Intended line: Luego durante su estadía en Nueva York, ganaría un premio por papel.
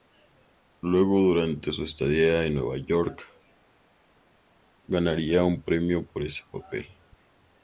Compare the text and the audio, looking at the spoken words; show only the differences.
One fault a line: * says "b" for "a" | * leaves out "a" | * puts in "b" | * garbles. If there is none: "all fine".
* puts in "ese"